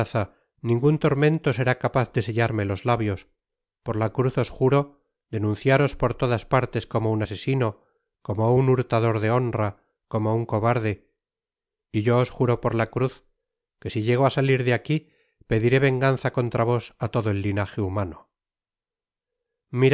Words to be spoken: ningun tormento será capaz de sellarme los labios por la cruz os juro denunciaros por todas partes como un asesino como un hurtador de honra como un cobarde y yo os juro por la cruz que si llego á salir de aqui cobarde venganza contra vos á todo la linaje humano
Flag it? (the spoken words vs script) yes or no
yes